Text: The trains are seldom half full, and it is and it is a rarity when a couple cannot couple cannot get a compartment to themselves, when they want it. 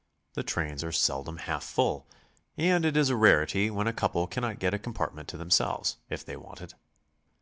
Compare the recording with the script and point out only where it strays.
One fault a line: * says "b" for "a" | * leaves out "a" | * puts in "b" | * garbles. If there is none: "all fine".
* leaves out "and it is"
* leaves out "couple cannot"
* says "if" for "when"